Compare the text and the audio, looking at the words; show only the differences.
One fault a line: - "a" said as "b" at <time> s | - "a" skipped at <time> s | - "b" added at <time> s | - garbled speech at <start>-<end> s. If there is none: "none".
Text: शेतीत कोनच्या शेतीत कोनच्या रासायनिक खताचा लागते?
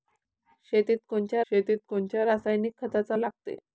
none